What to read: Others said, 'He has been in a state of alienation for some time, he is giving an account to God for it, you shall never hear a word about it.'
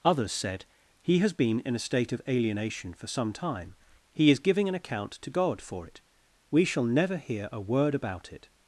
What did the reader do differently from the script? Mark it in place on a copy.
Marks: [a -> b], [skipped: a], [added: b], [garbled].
Others said, 'He has been in a state of alienation for some time, he is giving an account to God for it, [you -> we] shall never hear a word about it.'